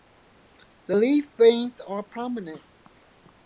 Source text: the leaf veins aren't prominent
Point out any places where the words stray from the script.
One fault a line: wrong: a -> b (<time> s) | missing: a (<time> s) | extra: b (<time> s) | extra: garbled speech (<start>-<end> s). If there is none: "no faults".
wrong: aren't -> are (1.8 s)